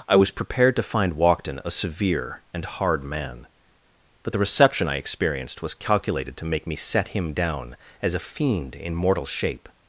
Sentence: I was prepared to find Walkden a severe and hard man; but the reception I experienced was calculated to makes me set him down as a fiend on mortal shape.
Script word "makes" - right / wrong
wrong